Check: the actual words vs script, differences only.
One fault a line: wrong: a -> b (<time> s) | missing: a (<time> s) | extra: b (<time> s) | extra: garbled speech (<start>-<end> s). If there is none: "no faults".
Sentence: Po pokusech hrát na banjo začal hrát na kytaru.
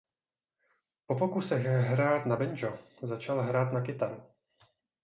no faults